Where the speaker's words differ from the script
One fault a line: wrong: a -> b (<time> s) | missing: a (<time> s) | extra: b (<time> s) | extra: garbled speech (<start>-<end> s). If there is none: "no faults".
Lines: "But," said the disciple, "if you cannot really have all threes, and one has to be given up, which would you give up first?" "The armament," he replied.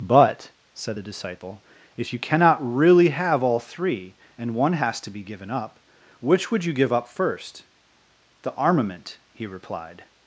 wrong: threes -> three (3.6 s)